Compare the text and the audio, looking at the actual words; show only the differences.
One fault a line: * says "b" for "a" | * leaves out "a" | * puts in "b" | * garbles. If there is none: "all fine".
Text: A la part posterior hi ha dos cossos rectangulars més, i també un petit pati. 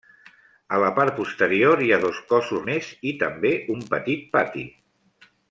* leaves out "rectangulars"